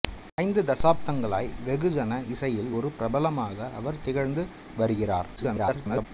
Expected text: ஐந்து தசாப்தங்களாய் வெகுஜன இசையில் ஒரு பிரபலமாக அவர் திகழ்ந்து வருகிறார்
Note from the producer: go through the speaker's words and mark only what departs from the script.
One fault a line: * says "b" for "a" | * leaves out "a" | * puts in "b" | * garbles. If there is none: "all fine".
* garbles